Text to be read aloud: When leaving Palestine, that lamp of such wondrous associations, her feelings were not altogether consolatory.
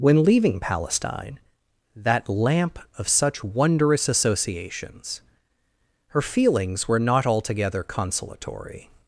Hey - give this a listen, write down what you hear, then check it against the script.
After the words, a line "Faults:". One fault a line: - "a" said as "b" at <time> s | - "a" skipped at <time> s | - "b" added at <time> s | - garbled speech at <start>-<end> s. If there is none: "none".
When leaving Palestine, that lamp of such wondrous associations, her feelings were not altogether consolatory.
Faults:
none